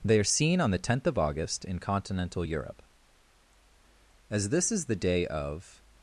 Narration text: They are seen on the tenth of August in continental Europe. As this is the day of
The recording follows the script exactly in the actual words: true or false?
true